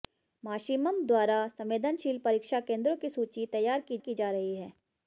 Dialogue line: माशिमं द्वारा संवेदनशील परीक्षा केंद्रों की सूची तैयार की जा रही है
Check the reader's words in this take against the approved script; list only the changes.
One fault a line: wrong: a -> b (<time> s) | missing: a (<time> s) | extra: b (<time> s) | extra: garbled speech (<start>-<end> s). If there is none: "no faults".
extra: की (4.0 s)